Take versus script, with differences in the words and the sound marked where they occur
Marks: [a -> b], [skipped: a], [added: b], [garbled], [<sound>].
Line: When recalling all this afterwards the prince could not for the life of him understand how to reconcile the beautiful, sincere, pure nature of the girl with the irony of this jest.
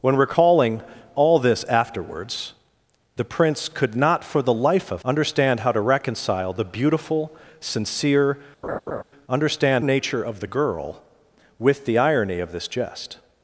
When recalling all this afterwards the prince could not for the life of [skipped: him] understand how to reconcile the beautiful, sincere, [laugh] [pure -> understand] nature of the girl with the irony of this jest.